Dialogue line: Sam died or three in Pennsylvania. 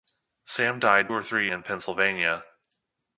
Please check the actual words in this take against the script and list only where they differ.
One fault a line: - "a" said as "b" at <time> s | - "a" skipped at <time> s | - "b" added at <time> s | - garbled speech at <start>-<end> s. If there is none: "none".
none